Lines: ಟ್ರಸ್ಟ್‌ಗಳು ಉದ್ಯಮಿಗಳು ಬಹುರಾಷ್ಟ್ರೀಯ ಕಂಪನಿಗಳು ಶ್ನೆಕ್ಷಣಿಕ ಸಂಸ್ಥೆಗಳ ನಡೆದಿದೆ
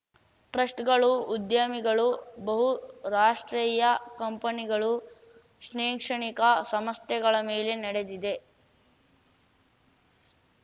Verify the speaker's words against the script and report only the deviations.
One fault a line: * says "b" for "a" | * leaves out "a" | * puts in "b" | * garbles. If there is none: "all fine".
* puts in "ಮೇಲೆ"